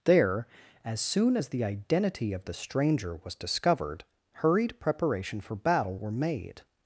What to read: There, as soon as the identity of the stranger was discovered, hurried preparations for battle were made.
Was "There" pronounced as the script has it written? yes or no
yes